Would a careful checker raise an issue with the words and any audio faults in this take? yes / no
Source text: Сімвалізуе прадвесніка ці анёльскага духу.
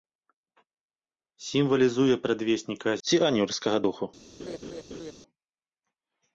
yes